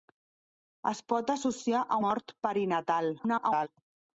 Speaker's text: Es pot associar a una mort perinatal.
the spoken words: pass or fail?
fail